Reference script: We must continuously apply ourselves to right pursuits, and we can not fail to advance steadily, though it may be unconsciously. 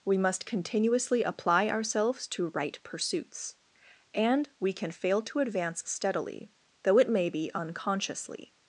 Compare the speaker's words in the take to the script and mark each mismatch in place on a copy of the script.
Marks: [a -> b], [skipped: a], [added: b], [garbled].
We must continuously apply ourselves to right pursuits, and we can [skipped: not] fail to advance steadily, though it may be unconsciously.